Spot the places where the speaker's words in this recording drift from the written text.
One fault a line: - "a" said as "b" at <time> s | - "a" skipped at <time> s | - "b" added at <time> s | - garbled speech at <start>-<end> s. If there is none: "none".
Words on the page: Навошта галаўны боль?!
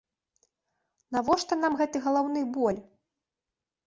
- "нам гэты" added at 1.6 s